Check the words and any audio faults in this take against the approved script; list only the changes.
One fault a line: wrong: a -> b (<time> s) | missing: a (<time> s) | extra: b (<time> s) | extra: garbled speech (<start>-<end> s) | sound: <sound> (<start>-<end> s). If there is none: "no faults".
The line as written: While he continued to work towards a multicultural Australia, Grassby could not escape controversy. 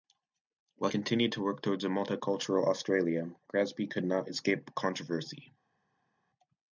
missing: he (0.9 s)